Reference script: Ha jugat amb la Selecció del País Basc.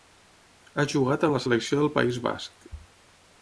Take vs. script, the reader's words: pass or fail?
pass